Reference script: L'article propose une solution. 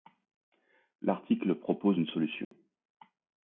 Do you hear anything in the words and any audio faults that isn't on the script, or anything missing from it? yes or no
yes